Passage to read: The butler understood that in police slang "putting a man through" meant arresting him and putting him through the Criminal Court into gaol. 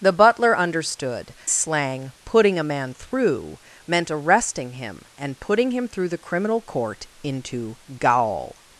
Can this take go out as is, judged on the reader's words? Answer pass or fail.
fail